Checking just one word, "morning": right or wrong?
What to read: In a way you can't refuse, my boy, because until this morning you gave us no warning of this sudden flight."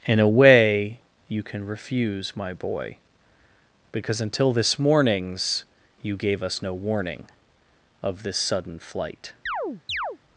wrong